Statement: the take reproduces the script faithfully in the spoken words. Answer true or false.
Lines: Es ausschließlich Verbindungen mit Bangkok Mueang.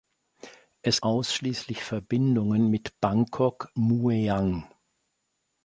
true